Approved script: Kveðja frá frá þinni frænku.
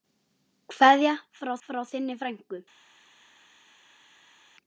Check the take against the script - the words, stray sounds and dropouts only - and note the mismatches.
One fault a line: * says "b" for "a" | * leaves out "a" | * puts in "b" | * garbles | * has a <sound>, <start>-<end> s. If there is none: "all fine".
all fine